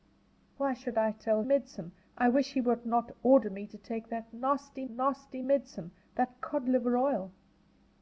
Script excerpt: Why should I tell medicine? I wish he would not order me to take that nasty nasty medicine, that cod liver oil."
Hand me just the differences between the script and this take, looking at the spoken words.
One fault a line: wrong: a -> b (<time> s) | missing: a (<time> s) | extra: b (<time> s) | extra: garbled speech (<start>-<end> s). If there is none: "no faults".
no faults